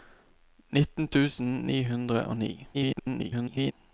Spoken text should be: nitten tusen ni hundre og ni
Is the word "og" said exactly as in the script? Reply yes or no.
yes